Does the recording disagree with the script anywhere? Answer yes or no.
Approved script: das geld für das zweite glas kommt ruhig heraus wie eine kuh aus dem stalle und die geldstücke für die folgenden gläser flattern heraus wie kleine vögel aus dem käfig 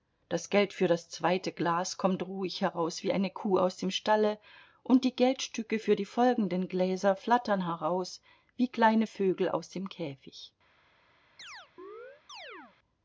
no